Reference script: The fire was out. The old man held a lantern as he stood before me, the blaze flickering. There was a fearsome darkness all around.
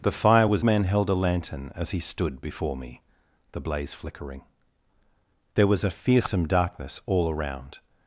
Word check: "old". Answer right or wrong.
wrong